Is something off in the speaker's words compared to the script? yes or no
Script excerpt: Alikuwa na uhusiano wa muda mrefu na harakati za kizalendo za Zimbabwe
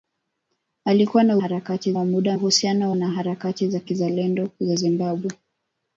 yes